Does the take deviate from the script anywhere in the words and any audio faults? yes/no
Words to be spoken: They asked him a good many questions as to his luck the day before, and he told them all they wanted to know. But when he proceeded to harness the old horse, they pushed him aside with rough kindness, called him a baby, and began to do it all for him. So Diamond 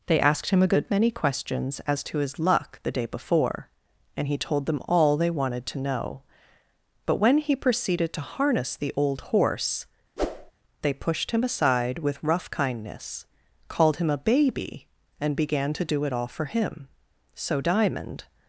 yes